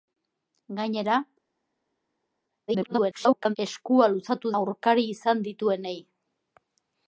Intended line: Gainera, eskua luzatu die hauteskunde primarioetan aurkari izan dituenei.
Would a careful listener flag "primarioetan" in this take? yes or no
yes